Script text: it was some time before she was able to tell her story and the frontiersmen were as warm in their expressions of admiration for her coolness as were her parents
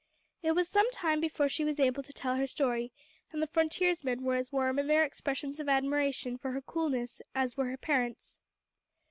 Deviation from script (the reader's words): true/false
false